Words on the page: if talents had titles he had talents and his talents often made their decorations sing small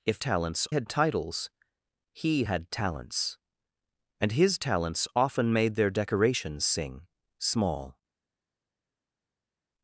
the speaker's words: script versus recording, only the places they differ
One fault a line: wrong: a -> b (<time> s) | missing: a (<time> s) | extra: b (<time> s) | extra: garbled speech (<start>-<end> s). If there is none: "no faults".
no faults